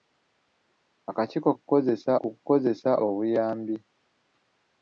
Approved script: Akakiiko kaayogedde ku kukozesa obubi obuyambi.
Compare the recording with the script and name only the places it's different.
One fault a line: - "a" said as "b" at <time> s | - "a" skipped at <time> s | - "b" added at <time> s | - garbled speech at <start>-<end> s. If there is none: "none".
- "kaayogedde" said as "kukozesa" at 1.6 s
- "obubi" skipped at 2.9 s